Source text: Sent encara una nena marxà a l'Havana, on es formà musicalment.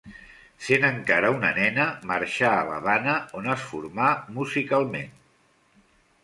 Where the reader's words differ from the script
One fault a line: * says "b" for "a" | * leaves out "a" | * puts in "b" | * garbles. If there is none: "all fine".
all fine